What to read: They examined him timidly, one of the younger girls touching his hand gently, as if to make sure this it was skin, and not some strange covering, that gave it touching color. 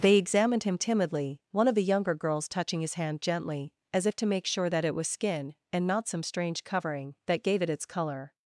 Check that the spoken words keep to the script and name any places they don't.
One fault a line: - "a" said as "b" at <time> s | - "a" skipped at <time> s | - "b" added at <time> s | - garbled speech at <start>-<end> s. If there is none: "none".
- "this" said as "that" at 4.7 s
- "touching" said as "its" at 7.7 s